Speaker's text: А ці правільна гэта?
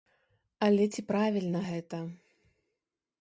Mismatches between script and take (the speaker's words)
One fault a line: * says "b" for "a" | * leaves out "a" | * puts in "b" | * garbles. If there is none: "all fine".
* says "Але" for "А"